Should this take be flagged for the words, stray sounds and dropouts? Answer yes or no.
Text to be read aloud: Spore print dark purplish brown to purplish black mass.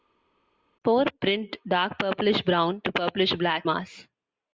no